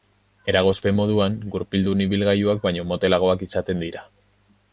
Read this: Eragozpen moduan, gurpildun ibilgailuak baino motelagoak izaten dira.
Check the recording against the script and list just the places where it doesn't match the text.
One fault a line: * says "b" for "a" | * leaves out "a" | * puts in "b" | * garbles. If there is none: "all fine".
all fine